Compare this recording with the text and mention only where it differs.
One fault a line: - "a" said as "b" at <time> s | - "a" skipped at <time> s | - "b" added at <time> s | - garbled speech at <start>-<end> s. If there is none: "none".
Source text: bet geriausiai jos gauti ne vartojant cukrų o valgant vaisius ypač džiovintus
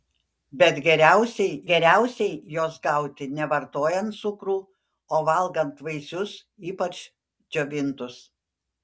- "geriausiai" added at 1.7 s